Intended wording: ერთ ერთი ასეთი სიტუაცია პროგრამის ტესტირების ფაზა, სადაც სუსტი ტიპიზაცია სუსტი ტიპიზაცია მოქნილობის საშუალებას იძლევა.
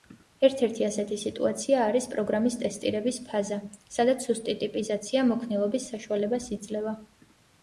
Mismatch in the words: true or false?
true